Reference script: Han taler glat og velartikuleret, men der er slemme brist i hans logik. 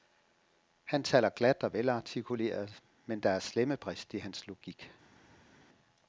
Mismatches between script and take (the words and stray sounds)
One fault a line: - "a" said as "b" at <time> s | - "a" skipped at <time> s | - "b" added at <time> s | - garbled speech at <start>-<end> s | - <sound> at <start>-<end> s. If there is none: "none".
none